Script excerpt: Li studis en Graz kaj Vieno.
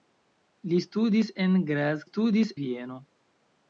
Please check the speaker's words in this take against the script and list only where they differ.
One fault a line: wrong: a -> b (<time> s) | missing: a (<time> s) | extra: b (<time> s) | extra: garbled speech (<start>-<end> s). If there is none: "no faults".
wrong: kaj -> studis (2.1 s)